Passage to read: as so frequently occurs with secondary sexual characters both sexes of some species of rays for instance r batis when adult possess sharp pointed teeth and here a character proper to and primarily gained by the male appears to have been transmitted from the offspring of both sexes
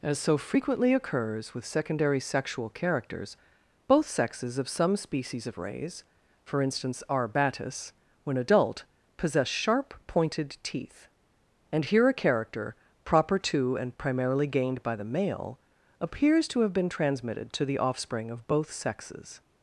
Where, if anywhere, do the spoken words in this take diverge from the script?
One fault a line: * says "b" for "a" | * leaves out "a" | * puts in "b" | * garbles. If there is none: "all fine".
* says "to" for "from"